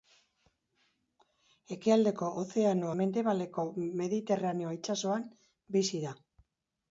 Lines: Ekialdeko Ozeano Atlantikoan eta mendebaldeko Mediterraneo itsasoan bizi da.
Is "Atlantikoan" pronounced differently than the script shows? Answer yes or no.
yes